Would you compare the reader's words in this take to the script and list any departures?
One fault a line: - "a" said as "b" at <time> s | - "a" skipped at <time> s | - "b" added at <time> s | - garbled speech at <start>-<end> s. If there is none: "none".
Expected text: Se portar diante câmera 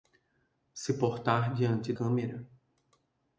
none